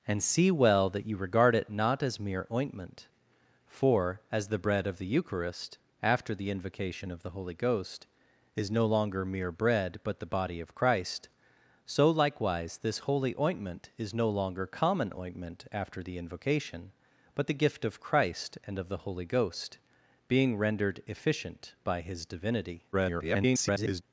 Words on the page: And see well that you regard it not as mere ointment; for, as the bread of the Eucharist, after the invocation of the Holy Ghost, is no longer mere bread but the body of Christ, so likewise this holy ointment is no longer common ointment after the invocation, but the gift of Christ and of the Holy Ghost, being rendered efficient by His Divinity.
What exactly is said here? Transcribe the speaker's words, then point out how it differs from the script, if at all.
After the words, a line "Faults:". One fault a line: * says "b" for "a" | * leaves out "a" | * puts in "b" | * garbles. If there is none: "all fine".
And see well that you regard it not as mere ointment; for, as the bread of the Eucharist, after the invocation of the Holy Ghost, is no longer mere bread but the body of Christ, so likewise this holy ointment is no longer common ointment after the invocation, but the gift of Christ and of the Holy Ghost, being rendered efficient by His Divinity. [garbled]
Faults:
* garbles